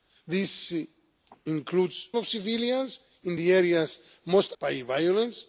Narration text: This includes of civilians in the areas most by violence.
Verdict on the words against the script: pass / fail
pass